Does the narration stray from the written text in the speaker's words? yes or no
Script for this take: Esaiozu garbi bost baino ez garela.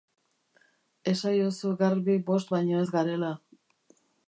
no